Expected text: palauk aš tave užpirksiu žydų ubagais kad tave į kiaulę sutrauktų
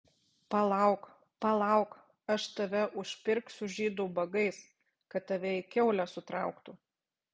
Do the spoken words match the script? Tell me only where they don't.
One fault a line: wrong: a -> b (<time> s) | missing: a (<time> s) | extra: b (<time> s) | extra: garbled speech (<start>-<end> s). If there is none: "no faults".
extra: palauk (1.4 s)